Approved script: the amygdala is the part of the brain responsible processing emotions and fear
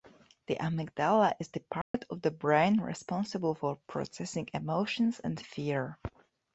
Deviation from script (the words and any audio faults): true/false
true